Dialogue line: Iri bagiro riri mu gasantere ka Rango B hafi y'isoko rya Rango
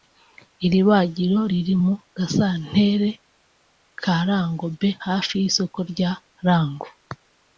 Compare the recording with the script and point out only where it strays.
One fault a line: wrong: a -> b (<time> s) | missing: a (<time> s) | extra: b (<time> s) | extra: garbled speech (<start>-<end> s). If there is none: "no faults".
no faults